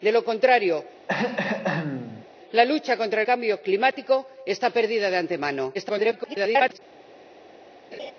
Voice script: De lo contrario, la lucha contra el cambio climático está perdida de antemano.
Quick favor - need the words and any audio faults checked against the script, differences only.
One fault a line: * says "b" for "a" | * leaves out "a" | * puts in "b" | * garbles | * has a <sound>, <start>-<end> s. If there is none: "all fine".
* has a throat clearing, 1.1-2.3 s
* leaves out "el"
* garbles
* has a laugh, 7.9-8.1 s